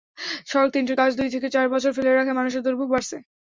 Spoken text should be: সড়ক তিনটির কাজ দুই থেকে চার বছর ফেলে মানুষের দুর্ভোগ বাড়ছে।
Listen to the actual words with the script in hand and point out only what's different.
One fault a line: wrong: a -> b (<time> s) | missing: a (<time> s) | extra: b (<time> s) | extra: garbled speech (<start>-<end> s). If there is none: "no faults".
extra: রাখায় (2.1 s)